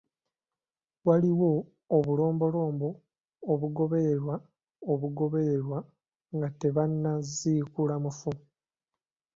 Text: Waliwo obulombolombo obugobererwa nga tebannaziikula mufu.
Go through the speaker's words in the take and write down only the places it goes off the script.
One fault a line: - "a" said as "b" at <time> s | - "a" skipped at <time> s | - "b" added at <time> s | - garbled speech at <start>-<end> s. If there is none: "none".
- "obugobererwa" added at 4.9 s